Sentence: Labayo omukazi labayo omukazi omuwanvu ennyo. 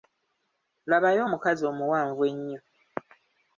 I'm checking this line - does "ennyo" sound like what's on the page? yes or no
yes